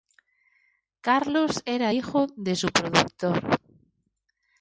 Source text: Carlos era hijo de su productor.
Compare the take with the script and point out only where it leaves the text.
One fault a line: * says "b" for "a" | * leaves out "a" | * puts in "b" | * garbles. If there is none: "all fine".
all fine